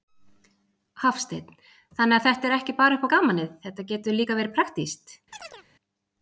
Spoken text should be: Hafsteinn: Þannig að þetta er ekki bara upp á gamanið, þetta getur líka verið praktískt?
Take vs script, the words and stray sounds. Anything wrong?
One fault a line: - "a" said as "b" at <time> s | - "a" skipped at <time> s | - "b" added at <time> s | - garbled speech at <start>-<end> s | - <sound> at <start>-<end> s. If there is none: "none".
- chirp at 5.3-5.7 s